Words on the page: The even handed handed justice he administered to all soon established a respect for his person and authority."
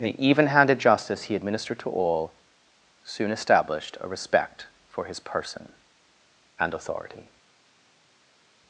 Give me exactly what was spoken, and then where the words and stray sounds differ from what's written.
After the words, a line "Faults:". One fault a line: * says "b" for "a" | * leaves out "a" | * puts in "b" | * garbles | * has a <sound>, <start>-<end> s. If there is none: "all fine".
The even handed justice he administered to all soon established a respect for his person and authority."
Faults:
* leaves out "handed"